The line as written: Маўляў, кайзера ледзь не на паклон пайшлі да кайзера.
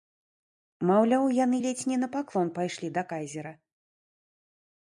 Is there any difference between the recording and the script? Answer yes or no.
yes